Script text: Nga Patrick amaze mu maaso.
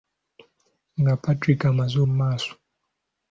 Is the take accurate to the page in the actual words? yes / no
yes